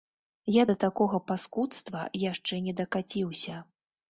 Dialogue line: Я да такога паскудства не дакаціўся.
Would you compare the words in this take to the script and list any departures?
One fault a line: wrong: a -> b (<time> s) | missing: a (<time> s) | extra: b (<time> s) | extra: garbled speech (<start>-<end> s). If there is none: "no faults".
extra: яшчэ (2.3 s)